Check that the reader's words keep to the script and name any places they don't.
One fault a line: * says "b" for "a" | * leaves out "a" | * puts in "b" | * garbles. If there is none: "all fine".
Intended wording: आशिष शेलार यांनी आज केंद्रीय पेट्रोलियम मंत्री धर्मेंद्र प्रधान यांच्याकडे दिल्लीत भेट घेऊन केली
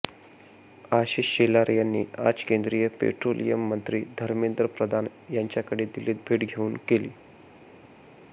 all fine